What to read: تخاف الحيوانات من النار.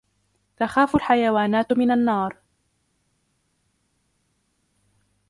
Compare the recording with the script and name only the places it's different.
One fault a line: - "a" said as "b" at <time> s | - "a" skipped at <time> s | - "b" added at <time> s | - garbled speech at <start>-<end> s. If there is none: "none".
none